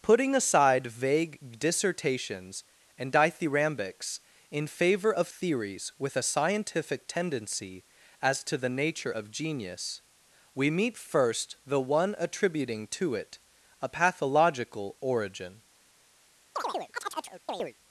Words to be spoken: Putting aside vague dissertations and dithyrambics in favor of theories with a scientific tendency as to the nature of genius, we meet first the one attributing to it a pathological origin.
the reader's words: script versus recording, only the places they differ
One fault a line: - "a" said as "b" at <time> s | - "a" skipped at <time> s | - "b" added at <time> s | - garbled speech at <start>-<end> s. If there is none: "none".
none